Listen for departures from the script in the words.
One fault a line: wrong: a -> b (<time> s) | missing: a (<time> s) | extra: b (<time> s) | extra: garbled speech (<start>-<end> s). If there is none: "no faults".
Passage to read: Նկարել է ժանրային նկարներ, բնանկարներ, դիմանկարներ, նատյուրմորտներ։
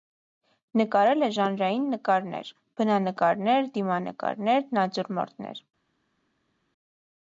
no faults